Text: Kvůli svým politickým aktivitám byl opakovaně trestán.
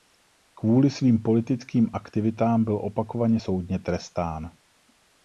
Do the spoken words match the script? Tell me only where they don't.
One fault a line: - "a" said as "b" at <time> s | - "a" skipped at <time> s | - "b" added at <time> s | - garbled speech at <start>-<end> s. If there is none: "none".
- "soudně" added at 3.3 s